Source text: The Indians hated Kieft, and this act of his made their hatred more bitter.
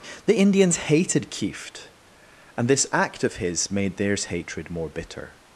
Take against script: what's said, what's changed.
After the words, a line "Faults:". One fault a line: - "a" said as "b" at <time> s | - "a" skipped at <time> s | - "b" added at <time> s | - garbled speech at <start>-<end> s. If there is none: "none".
The Indians hated Kieft, and this act of his made theirs hatred more bitter.
Faults:
- "their" said as "theirs" at 4.0 s